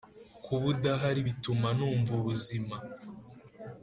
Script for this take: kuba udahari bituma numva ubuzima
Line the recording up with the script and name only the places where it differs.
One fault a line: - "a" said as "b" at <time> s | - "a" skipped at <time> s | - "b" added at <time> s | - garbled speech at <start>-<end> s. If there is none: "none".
none